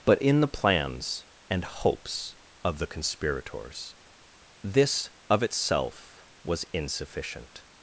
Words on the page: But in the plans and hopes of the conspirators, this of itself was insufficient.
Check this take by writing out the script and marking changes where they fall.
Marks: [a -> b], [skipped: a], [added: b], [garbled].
But in the plans and hopes of the conspirators, this of itself was insufficient.